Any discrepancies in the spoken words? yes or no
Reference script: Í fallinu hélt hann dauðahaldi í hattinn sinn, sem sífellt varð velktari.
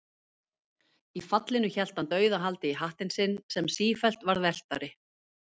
no